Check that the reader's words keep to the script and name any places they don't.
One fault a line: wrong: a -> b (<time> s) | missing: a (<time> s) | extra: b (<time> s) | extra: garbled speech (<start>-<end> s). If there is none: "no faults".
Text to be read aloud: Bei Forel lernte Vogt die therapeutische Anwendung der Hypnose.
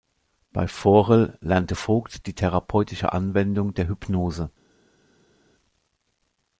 no faults